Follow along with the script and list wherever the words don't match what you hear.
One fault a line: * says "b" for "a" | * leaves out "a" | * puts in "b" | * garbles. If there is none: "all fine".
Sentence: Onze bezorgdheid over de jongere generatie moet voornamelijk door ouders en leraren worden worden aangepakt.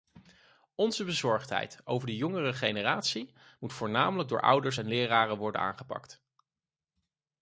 * leaves out "worden"